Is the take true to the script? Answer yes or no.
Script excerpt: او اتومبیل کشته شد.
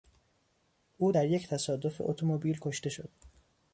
no